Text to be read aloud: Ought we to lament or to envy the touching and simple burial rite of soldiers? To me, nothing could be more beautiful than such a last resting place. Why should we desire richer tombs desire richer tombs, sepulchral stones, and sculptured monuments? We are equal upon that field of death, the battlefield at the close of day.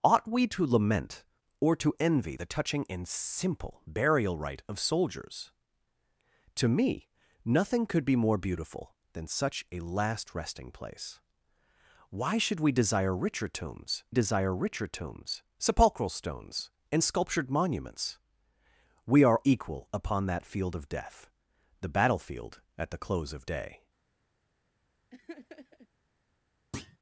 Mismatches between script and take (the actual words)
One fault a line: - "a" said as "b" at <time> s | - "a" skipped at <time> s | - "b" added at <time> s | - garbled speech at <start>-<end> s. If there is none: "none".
none